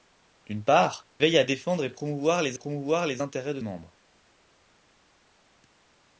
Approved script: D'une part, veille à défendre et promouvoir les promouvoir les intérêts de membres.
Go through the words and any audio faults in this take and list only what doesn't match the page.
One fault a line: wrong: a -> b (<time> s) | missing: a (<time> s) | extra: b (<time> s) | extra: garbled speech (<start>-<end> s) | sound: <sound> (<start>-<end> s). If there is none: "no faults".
no faults